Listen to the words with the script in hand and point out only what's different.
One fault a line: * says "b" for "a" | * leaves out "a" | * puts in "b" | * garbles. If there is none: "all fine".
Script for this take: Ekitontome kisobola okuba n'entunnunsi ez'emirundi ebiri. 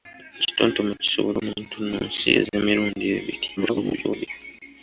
* leaves out "okuba"
* garbles